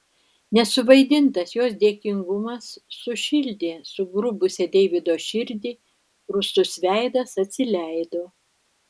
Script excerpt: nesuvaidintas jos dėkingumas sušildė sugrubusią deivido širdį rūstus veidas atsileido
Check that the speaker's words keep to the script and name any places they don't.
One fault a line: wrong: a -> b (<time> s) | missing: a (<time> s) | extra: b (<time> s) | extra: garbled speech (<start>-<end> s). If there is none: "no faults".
no faults